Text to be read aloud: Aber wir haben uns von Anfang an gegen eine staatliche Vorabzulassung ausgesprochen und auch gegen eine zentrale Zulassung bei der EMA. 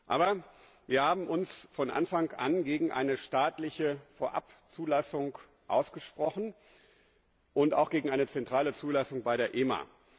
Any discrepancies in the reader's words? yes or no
no